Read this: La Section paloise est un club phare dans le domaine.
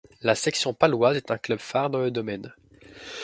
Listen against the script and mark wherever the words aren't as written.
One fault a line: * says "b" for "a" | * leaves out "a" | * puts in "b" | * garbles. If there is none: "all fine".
all fine